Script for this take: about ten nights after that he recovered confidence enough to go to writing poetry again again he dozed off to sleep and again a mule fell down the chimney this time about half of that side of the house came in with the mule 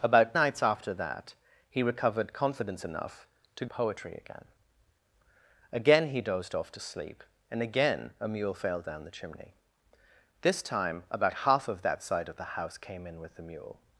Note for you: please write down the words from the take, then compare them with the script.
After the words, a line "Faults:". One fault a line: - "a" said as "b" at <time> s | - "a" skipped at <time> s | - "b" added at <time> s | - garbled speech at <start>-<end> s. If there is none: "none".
about nights after that he recovered confidence enough to poetry again again he dozed off to sleep and again a mule fell down the chimney this time about half of that side of the house came in with the mule
Faults:
- "ten" skipped at 0.3 s
- "go to writing" skipped at 3.7 s